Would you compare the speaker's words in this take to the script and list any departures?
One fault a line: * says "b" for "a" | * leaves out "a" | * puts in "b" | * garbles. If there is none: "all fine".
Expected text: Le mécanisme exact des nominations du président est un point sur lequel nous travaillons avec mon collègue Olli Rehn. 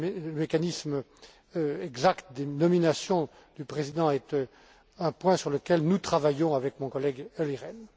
all fine